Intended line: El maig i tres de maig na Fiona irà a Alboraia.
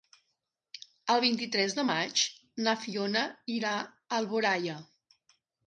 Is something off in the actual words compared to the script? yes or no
yes